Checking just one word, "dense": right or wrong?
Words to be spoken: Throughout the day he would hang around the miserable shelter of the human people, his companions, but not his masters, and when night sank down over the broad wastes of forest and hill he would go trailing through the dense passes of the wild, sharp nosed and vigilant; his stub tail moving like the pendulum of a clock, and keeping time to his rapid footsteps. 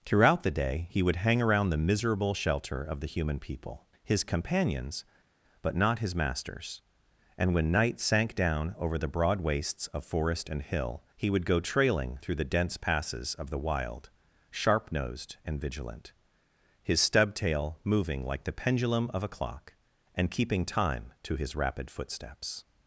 right